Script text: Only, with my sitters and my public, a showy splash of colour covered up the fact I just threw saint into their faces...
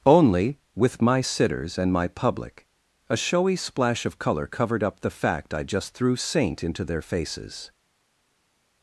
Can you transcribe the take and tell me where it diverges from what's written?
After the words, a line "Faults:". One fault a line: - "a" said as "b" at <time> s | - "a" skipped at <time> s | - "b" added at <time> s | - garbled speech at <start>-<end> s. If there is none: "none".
Only, with my sitters and my public, a showy splash of colour covered up the fact I just threw saint into their faces...
Faults:
none